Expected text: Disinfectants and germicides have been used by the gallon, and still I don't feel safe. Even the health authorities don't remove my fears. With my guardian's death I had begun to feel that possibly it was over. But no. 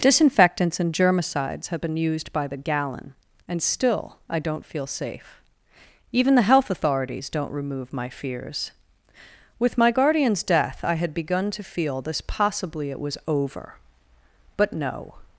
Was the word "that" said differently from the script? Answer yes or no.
yes